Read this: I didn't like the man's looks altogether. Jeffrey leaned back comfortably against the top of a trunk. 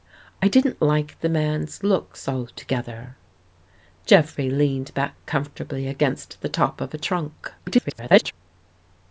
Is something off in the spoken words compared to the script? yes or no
yes